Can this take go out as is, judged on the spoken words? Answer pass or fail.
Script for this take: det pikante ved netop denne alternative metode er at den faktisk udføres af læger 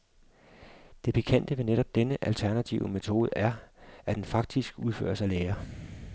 pass